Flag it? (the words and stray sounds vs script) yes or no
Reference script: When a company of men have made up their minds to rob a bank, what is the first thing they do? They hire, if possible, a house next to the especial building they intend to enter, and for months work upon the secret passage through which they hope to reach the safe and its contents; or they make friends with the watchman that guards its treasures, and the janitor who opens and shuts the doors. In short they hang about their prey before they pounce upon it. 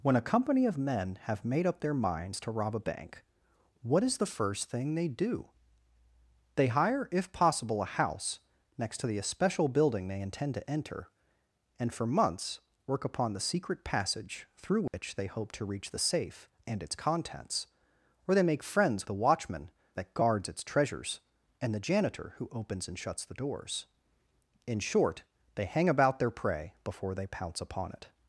yes